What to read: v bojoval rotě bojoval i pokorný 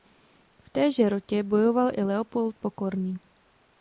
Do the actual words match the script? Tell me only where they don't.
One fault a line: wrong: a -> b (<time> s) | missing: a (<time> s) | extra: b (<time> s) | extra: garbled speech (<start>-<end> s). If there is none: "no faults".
wrong: bojoval -> téže (0.7 s)
extra: leopold (2.0 s)